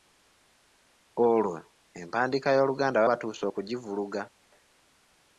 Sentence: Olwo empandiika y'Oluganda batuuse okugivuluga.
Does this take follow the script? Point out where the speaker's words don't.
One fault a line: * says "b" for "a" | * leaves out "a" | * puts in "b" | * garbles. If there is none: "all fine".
all fine